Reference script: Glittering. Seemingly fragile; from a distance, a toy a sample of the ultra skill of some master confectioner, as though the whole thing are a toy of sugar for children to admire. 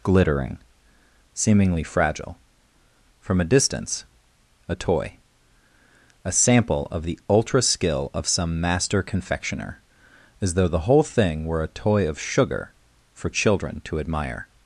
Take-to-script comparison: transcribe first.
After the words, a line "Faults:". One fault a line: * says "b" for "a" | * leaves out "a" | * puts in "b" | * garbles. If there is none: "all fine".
Glittering. Seemingly fragile; from a distance, a toy a sample of the ultra skill of some master confectioner, as though the whole thing were a toy of sugar for children to admire.
Faults:
* says "were" for "are"